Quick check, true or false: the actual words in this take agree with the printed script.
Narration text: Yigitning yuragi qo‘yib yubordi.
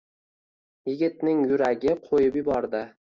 true